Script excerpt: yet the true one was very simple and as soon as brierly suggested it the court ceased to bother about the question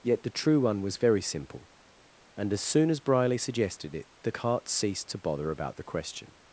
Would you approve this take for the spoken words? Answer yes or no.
no